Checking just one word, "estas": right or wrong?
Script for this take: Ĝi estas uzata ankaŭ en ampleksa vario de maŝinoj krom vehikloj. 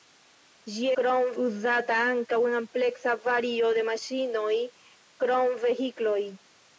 wrong